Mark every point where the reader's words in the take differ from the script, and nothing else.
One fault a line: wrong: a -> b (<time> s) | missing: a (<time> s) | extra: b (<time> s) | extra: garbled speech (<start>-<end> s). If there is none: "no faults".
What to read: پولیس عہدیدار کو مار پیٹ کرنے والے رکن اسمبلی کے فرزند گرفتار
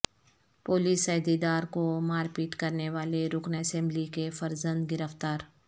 no faults